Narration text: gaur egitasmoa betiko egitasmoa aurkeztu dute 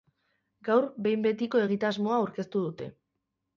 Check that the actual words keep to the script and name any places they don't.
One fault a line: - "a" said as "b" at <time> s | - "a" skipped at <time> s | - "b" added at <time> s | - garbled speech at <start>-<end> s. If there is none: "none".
- "egitasmoa" said as "behin" at 1.1 s